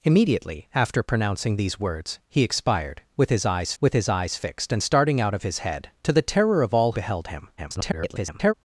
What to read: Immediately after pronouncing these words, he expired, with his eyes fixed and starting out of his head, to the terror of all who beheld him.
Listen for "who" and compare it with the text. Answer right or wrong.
wrong